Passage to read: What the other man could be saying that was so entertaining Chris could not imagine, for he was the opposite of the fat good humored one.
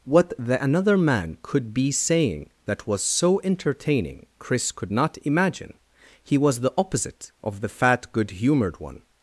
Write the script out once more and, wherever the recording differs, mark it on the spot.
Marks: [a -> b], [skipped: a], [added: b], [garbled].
What the [other -> another] man could be saying that was so entertaining Chris could not imagine, [skipped: for] he was the opposite of the fat good humored one.